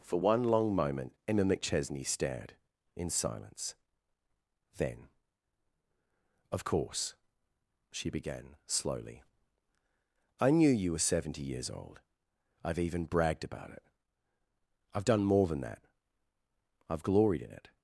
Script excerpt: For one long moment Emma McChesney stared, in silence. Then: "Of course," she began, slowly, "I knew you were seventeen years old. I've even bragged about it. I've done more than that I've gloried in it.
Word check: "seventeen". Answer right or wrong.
wrong